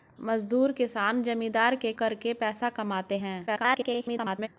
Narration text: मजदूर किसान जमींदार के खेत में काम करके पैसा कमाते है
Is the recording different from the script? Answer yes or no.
yes